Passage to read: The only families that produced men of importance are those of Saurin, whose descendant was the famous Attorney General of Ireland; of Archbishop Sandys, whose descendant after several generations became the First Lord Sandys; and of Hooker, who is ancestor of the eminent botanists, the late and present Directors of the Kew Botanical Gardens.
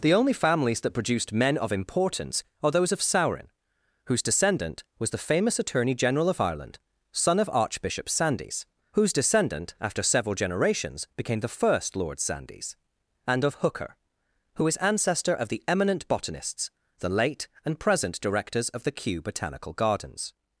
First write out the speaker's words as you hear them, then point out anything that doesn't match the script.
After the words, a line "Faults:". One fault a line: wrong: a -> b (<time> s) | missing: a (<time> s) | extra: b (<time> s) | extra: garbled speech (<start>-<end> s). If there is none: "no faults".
The only families that produced men of importance are those of Saurin, whose descendant was the famous Attorney General of Ireland; son of Archbishop Sandys, whose descendant after several generations became the First Lord Sandys; and of Hooker, who is ancestor of the eminent botanists, the late and present Directors of the Kew Botanical Gardens.
Faults:
extra: son (7.1 s)